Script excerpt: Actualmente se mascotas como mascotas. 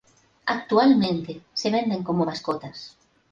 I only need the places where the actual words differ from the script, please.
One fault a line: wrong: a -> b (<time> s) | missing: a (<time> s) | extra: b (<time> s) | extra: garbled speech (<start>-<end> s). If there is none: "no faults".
wrong: mascotas -> venden (1.7 s)